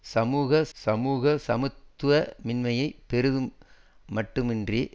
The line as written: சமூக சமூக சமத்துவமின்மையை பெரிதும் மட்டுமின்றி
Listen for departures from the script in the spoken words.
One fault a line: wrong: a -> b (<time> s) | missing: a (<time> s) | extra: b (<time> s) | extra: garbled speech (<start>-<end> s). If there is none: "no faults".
no faults